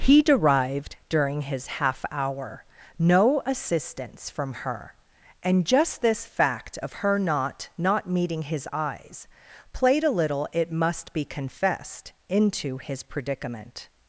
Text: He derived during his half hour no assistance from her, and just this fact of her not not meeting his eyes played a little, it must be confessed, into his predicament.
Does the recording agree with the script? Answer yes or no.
yes